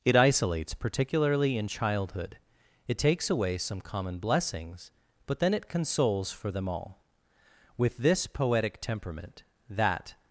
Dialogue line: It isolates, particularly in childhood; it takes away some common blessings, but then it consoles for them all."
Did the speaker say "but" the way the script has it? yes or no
yes